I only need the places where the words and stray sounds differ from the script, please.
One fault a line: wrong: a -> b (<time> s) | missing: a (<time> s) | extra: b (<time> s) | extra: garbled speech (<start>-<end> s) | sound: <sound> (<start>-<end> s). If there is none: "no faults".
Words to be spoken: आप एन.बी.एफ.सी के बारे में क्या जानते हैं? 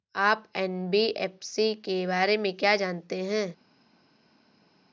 no faults